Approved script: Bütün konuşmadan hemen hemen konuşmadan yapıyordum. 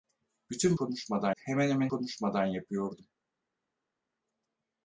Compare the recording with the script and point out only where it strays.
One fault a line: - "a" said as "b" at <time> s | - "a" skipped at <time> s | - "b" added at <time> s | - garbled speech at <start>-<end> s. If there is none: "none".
none